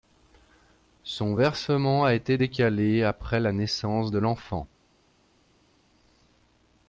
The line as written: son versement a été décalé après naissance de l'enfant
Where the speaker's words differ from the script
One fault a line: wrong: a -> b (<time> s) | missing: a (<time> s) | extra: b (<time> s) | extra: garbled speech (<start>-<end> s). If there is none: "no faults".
extra: la (3.4 s)